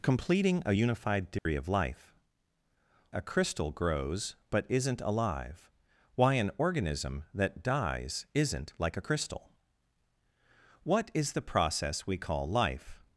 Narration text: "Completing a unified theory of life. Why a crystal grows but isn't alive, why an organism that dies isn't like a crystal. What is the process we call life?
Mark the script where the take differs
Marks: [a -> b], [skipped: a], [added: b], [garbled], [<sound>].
"Completing a unified theory [dropout] of life. [skipped: Why] a crystal grows but isn't alive, why an organism that dies isn't like a crystal. What is the process we call life?